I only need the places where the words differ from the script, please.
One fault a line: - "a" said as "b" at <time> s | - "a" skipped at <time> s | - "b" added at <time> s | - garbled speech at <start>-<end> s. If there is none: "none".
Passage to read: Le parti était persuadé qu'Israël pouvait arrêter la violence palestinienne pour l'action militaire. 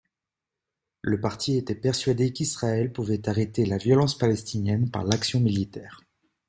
- "pour" said as "par" at 4.9 s